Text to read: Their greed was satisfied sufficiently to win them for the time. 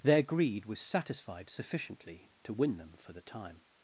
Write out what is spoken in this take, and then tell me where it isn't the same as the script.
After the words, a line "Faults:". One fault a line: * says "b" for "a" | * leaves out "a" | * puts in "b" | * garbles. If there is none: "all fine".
Their greed was satisfied sufficiently to win them for the time.
Faults:
all fine